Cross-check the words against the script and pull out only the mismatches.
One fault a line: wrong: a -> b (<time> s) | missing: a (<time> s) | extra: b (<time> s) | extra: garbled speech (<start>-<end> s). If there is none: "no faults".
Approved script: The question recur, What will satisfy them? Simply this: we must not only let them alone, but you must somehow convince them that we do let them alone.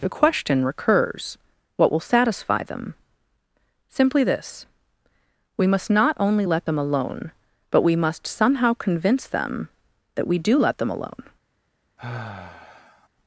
wrong: recur -> recurs (0.7 s)
wrong: you -> we (7.8 s)